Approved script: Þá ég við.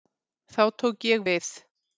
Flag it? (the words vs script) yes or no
yes